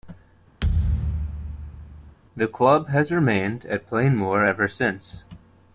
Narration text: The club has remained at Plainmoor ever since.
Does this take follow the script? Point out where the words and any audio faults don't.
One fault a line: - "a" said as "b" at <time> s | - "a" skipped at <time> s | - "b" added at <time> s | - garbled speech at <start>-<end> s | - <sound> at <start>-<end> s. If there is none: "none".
- thud at 0.6-2.2 s